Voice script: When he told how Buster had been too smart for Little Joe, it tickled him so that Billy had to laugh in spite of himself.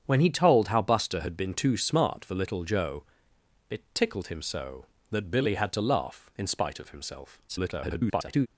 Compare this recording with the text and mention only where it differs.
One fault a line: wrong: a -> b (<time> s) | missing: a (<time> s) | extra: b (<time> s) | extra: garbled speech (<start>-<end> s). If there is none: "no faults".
extra: garbled speech (7.5-8.5 s)